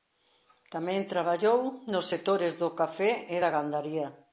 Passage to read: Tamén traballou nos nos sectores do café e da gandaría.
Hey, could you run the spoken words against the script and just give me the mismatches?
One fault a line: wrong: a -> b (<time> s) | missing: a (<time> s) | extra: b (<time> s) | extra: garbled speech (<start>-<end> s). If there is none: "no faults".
missing: nos (2.0 s)